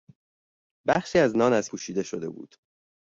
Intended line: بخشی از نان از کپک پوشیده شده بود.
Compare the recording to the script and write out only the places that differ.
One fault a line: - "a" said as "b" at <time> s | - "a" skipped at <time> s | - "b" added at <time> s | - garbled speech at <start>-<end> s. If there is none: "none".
- "کپک" skipped at 1.7 s